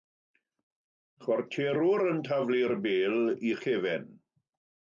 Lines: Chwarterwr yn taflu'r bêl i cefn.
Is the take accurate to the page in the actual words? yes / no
yes